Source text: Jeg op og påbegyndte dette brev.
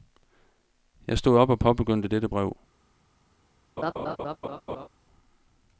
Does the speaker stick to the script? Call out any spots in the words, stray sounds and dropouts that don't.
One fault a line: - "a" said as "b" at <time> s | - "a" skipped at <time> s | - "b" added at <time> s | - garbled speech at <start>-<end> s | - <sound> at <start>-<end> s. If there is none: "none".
- "stod" added at 1.2 s
- laugh at 3.8-4.9 s